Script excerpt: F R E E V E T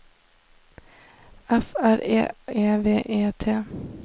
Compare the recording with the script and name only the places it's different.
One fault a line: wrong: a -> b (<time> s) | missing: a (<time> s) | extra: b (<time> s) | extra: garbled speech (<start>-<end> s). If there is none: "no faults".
no faults